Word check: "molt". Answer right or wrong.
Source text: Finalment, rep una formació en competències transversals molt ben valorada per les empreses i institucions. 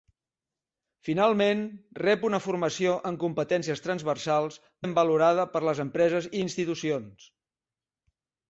wrong